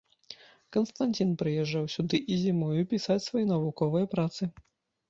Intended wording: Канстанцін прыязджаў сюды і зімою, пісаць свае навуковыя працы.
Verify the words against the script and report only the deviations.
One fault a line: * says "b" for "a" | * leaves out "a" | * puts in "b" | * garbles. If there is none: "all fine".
all fine